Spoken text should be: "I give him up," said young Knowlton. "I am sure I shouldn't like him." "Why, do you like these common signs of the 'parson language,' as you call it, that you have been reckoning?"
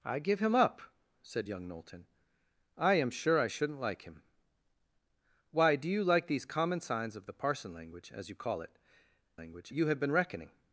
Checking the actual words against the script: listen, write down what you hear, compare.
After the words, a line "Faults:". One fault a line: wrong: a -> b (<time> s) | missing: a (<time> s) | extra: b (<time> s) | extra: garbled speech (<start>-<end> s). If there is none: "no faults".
"I give him up," said young Knowlton. "I am sure I shouldn't like him." "Why, do you like these common signs of the 'parson language,' as you call it, language you have been reckoning?"
Faults:
wrong: that -> language (9.3 s)